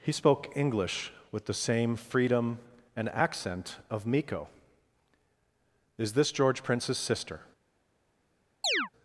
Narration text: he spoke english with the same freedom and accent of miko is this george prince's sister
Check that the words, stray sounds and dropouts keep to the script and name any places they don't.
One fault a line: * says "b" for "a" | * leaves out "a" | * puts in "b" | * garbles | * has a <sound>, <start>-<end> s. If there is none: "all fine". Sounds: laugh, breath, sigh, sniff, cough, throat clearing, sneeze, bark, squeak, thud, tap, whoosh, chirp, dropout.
* has a chirp, 8.6-8.9 s